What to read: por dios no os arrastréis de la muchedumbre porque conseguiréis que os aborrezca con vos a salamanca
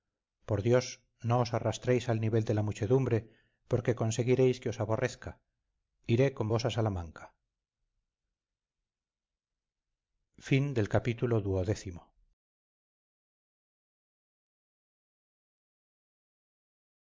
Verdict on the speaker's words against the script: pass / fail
fail